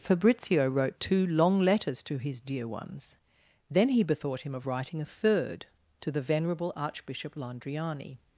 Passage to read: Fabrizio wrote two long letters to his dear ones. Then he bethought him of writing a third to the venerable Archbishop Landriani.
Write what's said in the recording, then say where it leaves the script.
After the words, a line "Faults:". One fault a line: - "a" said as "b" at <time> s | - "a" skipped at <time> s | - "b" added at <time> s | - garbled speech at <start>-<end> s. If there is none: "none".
Fabrizio wrote two long letters to his dear ones. Then he bethought him of writing a third to the venerable Archbishop Landriani.
Faults:
none